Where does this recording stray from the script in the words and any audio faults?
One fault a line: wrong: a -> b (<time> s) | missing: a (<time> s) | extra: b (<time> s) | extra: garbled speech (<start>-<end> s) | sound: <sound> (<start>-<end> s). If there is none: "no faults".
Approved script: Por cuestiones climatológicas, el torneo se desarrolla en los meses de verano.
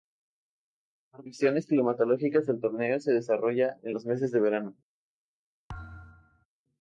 sound: thud (5.7-6.5 s)